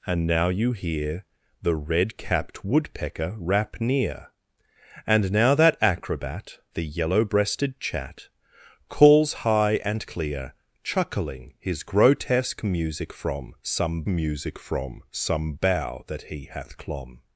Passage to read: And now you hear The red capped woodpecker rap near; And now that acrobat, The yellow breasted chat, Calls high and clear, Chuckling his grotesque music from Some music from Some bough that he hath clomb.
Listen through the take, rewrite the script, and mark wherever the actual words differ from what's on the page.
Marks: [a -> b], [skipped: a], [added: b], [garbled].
And now you hear The red capped woodpecker rap near; And now that acrobat, The yellow breasted chat, Calls high and clear, Chuckling his grotesque music from Some music from Some bough that he hath clomb.